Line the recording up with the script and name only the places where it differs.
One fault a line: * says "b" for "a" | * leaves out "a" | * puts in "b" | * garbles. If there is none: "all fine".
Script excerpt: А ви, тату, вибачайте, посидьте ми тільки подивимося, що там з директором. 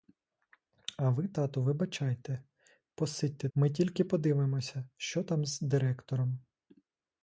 all fine